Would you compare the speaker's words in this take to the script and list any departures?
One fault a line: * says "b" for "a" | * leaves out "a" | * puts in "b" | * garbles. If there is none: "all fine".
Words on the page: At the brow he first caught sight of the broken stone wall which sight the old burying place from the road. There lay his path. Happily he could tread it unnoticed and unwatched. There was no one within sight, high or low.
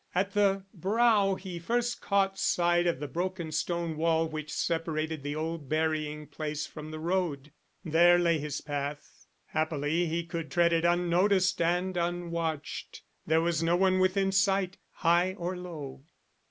* says "separated" for "sight"